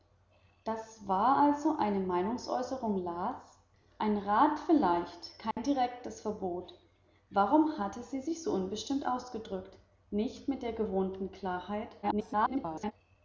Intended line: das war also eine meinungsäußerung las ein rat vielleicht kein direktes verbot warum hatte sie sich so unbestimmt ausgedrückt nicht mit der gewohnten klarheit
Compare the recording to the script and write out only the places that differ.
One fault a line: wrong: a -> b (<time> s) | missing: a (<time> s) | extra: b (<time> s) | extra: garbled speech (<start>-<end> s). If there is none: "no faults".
extra: garbled speech (12.0-12.9 s)